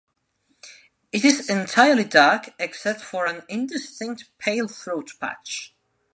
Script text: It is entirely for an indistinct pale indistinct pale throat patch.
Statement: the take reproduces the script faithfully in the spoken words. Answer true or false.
false